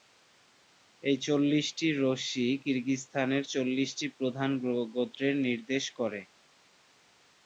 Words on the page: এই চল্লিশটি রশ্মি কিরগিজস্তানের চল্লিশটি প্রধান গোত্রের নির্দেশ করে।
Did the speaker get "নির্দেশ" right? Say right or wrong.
right